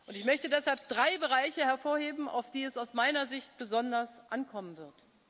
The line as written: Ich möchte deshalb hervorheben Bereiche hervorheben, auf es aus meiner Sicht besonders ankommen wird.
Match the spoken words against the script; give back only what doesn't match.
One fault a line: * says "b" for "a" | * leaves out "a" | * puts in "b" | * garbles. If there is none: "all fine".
* says "drei" for "hervorheben"
* puts in "die"